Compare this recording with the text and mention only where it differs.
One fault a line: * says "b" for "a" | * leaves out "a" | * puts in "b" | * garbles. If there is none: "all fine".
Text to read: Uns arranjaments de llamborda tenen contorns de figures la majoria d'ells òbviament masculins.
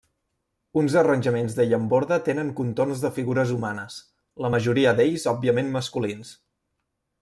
* puts in "humanes"